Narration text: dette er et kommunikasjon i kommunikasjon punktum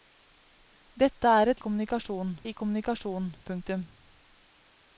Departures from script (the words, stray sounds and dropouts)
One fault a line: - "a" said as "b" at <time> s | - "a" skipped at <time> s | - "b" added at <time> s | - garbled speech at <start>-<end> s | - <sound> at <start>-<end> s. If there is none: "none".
none